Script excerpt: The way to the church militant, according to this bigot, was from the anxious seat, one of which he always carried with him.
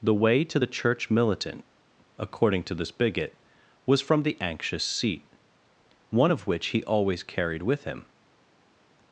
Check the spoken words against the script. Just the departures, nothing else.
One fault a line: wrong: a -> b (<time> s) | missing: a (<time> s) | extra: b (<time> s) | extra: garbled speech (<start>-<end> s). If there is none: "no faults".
no faults